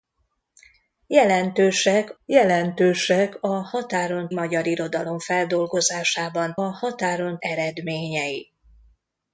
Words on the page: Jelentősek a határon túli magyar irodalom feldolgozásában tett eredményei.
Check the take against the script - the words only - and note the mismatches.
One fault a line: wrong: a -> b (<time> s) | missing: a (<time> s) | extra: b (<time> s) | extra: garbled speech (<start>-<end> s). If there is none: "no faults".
extra: jelentősek (2.3 s)
missing: túli (4.3 s)
wrong: tett -> határon (6.6 s)